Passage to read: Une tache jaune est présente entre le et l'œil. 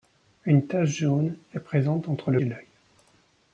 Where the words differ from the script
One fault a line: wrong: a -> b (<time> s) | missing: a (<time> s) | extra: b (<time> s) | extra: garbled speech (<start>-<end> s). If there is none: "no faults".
no faults